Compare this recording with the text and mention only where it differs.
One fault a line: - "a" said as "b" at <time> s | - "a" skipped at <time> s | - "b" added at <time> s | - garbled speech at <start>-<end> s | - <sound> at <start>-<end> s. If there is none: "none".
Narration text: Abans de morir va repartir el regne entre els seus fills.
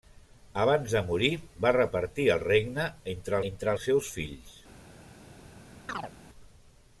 - "entre" added at 3.5 s
- chirp at 5.9-6.1 s